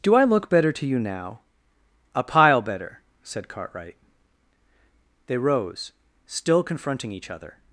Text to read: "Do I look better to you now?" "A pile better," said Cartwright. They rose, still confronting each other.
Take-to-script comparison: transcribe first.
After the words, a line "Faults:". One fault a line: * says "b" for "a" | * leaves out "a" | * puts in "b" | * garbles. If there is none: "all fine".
"Do I look better to you now?" "A pile better," said Cartwright. They rose, still confronting each other.
Faults:
all fine